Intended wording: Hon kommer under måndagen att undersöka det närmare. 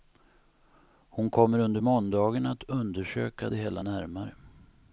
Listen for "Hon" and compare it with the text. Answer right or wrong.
right